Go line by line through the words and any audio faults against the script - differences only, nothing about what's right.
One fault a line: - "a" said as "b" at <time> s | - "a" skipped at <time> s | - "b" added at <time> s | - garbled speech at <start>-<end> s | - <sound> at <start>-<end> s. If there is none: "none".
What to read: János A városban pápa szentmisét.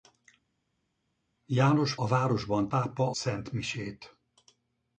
none